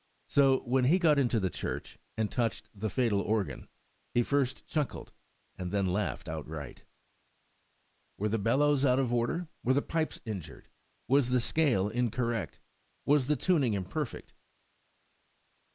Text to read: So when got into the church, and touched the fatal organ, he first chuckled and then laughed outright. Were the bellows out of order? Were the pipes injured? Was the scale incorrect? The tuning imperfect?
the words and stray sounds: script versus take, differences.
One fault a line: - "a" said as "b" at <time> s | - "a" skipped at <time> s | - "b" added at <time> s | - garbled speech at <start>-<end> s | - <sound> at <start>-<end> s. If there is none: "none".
- "he" added at 0.8 s
- "Was" added at 13.1 s